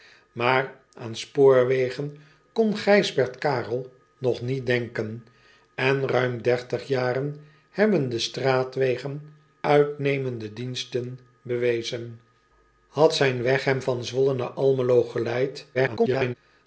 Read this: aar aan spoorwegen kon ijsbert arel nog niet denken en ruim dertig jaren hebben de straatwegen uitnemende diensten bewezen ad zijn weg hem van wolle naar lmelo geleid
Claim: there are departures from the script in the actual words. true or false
true